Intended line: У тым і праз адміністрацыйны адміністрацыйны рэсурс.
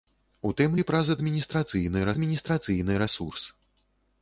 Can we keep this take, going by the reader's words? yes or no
yes